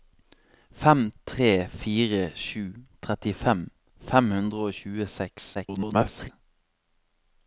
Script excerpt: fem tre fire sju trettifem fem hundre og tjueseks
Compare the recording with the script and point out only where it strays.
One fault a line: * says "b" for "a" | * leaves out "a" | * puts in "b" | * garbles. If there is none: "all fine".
* garbles